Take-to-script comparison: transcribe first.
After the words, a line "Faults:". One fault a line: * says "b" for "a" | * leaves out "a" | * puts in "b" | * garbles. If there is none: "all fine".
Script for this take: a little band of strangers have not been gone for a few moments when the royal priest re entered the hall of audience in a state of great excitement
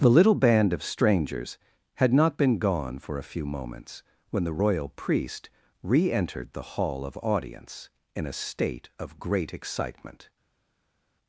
the little band of strangers had not been gone for a few moments when the royal priest re entered the hall of audience in a state of great excitement
Faults:
* says "the" for "a"
* says "had" for "have"